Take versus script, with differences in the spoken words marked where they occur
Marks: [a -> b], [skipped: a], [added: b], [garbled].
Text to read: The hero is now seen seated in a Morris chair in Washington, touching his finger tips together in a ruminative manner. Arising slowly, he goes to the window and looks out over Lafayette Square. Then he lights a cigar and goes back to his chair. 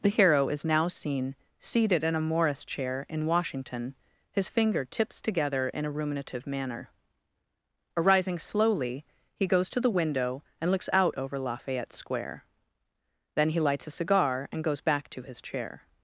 The hero is now seen seated in a Morris chair in Washington, [skipped: touching] his finger tips together in a ruminative manner. Arising slowly, he goes to the window and looks out over Lafayette Square. Then he lights a cigar and goes back to his chair.